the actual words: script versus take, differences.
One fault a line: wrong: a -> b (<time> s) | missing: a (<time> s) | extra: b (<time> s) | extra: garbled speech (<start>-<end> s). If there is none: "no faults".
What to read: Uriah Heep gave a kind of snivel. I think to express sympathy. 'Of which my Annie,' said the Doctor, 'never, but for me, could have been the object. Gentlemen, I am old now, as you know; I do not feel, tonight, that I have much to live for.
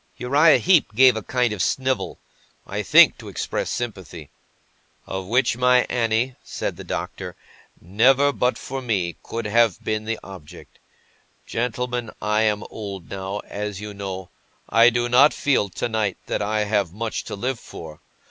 no faults